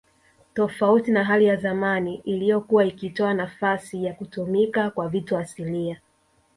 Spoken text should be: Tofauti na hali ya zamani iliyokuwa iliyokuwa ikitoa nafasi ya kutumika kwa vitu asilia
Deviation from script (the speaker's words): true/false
true